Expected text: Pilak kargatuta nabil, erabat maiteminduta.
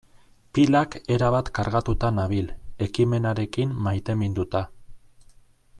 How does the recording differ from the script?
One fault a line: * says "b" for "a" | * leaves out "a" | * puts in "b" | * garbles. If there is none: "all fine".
* puts in "erabat"
* says "ekimenarekin" for "erabat"